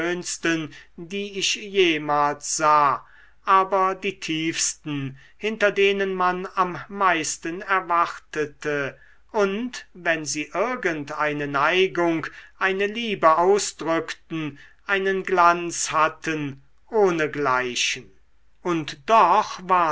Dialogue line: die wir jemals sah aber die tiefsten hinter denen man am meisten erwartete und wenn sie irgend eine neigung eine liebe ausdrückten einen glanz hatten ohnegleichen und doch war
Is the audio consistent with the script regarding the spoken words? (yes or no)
no